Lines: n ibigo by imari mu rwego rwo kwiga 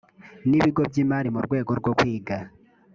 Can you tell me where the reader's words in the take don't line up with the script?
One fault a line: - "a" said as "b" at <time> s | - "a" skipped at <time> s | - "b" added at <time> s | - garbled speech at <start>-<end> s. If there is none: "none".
none